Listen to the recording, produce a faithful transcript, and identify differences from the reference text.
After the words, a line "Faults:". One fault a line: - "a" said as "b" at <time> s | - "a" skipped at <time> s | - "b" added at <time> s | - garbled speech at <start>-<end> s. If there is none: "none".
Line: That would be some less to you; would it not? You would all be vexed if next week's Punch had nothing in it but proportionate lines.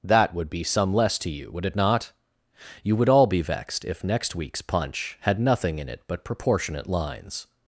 That would be some less to you; would it not? You would all be vexed if next week's Punch had nothing in it but proportionate lines.
Faults:
none